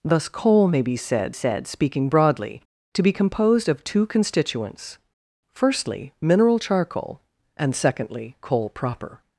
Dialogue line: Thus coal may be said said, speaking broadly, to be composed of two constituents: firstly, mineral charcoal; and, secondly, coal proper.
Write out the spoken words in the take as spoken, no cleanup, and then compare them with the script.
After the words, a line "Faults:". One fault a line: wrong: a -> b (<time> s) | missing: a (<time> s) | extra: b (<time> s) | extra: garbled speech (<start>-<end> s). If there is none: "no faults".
Thus coal may be said said, speaking broadly, to be composed of two constituents: firstly, mineral charcoal; and, secondly, coal proper.
Faults:
no faults